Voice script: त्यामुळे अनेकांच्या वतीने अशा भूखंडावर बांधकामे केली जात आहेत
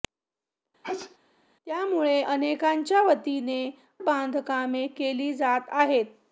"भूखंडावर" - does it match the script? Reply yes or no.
no